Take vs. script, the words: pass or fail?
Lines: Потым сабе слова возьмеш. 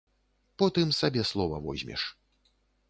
pass